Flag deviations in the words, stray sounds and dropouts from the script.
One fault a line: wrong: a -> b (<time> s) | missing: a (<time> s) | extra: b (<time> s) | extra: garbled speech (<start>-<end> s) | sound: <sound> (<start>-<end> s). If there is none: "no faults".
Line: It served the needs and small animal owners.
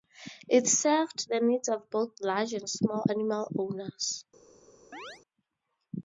extra: of both large (1.7 s)
sound: chirp (4.9-5.2 s)